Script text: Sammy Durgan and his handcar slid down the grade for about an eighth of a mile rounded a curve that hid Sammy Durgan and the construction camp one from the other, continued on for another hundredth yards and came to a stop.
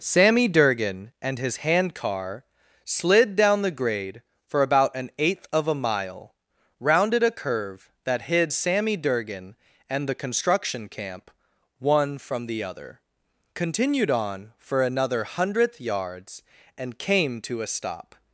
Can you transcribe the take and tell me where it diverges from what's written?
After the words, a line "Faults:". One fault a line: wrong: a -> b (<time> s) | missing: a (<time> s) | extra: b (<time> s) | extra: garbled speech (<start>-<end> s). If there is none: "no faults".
Sammy Durgan and his handcar slid down the grade for about an eighth of a mile rounded a curve that hid Sammy Durgan and the construction camp one from the other, continued on for another hundredth yards and came to a stop.
Faults:
no faults